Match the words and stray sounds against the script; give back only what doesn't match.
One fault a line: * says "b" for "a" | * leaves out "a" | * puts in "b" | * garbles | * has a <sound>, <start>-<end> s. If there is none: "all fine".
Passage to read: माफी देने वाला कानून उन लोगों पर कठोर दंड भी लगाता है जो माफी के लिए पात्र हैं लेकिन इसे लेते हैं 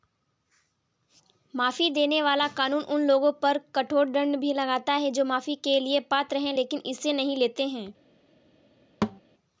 * puts in "नहीं"
* has a thud, 9.0-9.2 s